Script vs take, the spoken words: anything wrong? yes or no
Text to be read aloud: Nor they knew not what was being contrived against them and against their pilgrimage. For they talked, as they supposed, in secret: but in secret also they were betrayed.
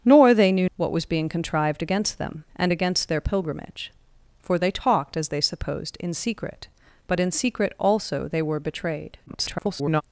yes